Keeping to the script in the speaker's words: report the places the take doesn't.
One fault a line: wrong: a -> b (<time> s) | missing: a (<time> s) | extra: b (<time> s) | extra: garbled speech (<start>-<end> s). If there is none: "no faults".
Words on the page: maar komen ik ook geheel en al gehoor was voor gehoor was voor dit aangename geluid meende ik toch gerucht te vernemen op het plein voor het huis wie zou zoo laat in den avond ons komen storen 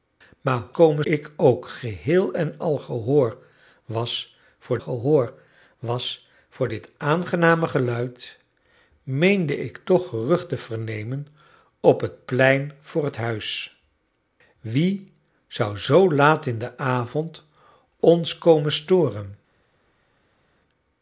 no faults